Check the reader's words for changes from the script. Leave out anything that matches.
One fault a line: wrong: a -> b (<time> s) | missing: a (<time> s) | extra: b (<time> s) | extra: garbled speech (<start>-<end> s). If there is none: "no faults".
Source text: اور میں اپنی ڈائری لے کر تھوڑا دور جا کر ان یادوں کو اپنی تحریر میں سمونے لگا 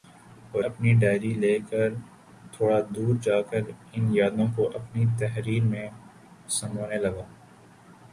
missing: میں (0.6 s)